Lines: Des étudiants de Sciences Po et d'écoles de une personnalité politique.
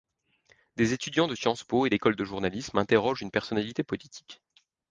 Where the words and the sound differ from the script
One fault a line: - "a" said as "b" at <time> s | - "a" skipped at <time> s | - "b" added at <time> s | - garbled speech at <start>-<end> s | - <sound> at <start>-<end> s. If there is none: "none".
- "journalisme interrogent" added at 2.2 s